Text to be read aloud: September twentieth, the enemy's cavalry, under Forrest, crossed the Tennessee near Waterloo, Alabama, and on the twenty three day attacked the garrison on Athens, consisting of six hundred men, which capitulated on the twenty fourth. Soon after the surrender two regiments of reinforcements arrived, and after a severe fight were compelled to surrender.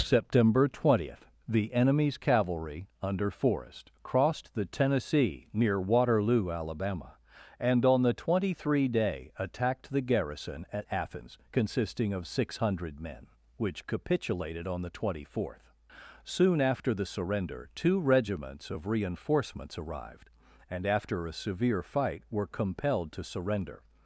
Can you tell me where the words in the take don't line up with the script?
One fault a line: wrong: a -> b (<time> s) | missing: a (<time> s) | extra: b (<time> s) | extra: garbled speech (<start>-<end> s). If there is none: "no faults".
wrong: on -> at (10.7 s)